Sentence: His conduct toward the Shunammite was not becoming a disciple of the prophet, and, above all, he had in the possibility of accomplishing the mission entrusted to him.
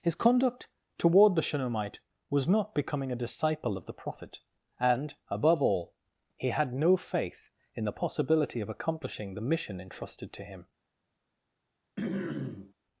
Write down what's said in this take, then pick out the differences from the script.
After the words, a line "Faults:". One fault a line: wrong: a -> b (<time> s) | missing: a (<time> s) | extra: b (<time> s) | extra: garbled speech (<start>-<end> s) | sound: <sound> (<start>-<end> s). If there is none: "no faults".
His conduct toward the Shunammite was not becoming a disciple of the prophet, and, above all, he had no faith in the possibility of accomplishing the mission entrusted to him.
Faults:
extra: no faith (6.7 s)
sound: throat clearing (12.0-12.7 s)